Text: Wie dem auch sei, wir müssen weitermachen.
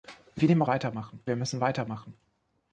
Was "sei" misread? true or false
true